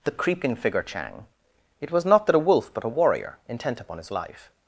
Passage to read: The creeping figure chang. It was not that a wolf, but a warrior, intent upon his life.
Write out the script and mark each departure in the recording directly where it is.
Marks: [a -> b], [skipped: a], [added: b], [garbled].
The creeping figure chang. It was not that a wolf, but a warrior, intent upon his life.